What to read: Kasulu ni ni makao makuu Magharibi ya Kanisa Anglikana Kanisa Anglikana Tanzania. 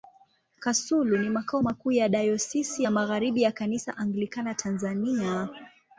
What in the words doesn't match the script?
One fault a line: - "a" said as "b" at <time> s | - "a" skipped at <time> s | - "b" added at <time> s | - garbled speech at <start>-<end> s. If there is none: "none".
- "ni" skipped at 1.3 s
- "Magharibi" said as "ya Dayosisi" at 1.9 s
- "Kanisa Anglikana" said as "Magharibi ya" at 2.9 s